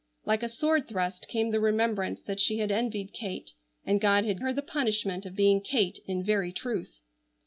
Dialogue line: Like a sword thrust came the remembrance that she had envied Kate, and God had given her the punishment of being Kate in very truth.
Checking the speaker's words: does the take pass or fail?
fail